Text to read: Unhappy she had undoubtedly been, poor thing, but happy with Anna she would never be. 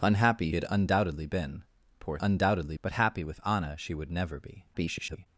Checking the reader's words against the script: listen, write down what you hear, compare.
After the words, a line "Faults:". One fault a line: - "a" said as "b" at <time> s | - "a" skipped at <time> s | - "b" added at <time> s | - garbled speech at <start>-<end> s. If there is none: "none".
Unhappy had undoubtedly been, poor undoubtedly, but happy with Anna she would never be. [garbled]
Faults:
- "she" skipped at 0.5 s
- "thing" said as "undoubtedly" at 2.2 s
- garbled speech at 4.7-5.3 s